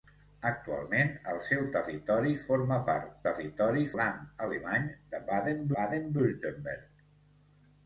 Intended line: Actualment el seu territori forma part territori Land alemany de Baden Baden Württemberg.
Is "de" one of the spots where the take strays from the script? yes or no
no